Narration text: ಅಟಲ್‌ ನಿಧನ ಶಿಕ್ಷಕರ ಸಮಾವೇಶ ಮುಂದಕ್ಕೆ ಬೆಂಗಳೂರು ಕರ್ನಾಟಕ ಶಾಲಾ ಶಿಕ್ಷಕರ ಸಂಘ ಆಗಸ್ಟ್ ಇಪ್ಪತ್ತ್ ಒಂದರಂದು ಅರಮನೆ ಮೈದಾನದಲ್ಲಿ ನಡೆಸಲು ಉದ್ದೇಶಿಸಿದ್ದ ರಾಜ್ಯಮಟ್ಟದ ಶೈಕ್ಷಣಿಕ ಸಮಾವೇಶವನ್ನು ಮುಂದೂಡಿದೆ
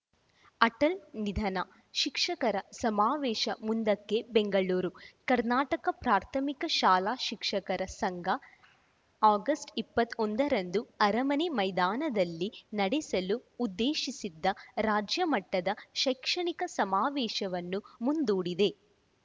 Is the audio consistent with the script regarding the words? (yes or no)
no